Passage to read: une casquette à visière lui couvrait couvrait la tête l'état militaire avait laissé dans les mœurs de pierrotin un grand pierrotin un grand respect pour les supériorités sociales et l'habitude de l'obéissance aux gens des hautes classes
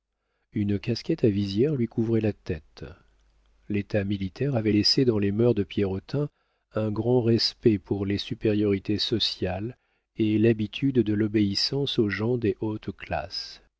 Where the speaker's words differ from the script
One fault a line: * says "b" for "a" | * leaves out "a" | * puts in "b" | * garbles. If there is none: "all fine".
* leaves out "couvrait"
* leaves out "pierrotin un grand"